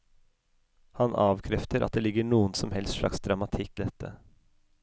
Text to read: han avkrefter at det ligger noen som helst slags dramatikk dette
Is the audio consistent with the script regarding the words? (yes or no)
yes